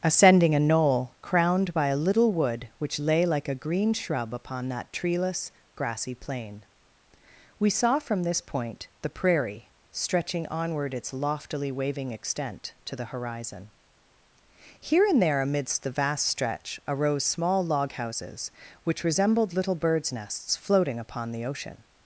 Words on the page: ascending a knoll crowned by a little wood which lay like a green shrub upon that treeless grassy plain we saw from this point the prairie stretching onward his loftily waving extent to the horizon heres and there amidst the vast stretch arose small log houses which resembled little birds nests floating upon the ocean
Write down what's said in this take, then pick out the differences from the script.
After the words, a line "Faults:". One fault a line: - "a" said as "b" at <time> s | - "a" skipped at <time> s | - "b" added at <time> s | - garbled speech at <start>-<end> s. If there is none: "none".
ascending a knoll crowned by a little wood which lay like a green shrub upon that treeless grassy plain we saw from this point the prairie stretching onward its loftily waving extent to the horizon here and there amidst the vast stretch arose small log houses which resembled little birds nests floating upon the ocean
Faults:
- "his" said as "its" at 10.9 s
- "heres" said as "here" at 14.8 s